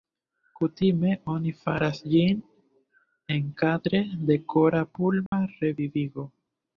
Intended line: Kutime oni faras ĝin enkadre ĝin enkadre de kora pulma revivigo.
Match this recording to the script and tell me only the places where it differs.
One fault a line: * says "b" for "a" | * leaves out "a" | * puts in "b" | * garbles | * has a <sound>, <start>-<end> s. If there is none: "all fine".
* leaves out "ĝin enkadre"
* has a dropout, 5.3-5.3 s